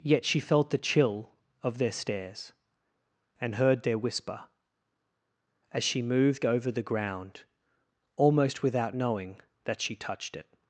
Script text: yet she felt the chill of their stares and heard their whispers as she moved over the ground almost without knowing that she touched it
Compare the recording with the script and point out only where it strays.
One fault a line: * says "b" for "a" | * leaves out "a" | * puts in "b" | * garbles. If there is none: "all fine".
* says "whisper" for "whispers"